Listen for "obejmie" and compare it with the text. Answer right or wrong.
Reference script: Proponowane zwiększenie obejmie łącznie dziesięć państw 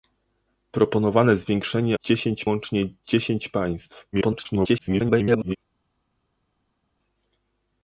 wrong